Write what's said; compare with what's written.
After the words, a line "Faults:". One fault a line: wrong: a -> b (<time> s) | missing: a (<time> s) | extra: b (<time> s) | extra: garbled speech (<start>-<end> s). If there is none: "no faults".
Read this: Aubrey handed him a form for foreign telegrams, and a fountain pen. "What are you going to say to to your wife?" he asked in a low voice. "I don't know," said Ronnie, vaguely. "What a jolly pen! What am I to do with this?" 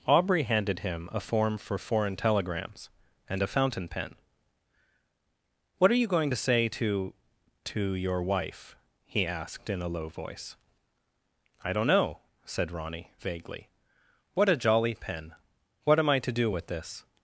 Aubrey handed him a form for foreign telegrams, and a fountain pen. "What are you going to say to to your wife?" he asked in a low voice. "I don't know," said Ronnie, vaguely. "What a jolly pen! What am I to do with this?"
Faults:
no faults